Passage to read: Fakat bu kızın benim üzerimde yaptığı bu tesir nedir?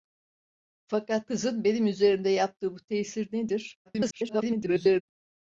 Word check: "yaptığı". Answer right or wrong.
right